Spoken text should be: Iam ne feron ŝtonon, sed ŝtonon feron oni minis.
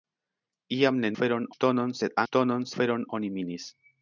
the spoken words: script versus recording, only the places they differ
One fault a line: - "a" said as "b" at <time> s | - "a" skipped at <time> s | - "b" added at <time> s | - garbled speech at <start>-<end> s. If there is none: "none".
none